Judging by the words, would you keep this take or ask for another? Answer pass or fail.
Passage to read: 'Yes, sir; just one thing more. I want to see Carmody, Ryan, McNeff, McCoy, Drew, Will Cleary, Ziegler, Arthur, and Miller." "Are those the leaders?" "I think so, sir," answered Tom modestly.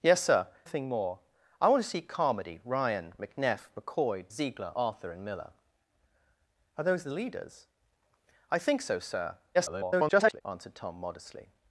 fail